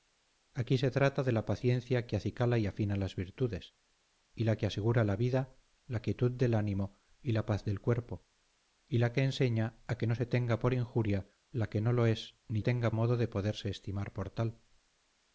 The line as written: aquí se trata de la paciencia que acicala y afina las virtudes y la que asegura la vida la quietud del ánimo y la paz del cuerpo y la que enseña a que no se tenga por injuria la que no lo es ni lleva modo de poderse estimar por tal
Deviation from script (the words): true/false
true